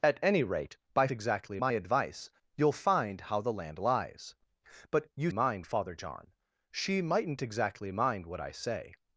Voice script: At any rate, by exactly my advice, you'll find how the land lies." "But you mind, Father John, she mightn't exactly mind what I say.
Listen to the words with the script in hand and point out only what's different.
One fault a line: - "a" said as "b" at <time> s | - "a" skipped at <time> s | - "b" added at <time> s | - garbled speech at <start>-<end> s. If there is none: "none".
none